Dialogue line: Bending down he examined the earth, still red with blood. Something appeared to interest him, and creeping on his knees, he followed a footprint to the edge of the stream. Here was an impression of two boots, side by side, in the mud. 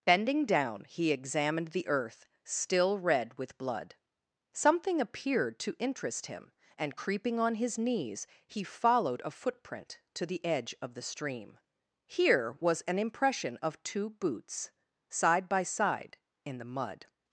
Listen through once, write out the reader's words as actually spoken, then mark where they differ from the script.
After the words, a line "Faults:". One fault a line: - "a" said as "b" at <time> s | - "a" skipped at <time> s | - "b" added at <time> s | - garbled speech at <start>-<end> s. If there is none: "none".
Bending down he examined the earth, still red with blood. Something appeared to interest him, and creeping on his knees, he followed a footprint to the edge of the stream. Here was an impression of two boots, side by side, in the mud.
Faults:
none